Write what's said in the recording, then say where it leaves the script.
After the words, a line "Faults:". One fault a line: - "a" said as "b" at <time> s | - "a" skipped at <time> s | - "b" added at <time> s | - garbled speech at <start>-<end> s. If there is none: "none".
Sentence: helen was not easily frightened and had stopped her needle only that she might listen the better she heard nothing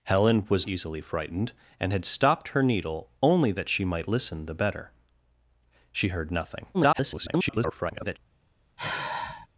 helen was easily frightened and had stopped her needle only that she might listen the better she heard nothing [garbled]
Faults:
- "not" skipped at 0.7 s
- garbled speech at 6.7-8.2 s